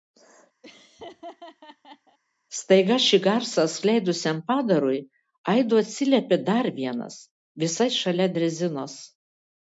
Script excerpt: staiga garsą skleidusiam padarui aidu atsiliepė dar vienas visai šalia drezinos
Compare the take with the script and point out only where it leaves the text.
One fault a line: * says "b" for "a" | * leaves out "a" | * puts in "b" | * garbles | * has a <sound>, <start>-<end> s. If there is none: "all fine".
* has a laugh, 0.6-2.2 s
* puts in "šį"